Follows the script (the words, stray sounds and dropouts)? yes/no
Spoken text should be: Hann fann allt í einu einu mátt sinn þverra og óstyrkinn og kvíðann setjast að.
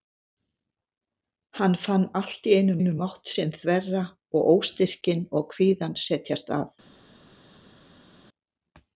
yes